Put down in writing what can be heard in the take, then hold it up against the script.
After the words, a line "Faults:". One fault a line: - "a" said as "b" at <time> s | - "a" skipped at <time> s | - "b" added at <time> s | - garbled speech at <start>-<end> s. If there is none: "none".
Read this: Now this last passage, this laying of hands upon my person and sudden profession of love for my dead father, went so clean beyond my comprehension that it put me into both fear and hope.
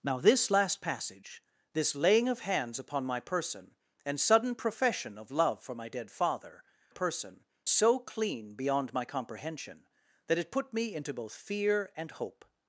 Now this last passage, this laying of hands upon my person and sudden profession of love for my dead father, person so clean beyond my comprehension that it put me into both fear and hope.
Faults:
- "went" said as "person" at 6.9 s